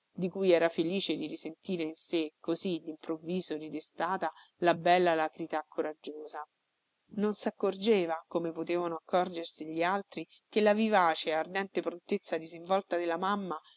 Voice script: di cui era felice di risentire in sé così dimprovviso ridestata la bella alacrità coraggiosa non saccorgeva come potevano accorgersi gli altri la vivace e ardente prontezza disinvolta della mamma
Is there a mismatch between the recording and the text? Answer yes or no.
yes